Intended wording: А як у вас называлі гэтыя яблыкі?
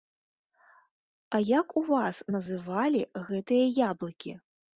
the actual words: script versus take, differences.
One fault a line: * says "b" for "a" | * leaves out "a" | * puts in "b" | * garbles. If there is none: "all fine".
all fine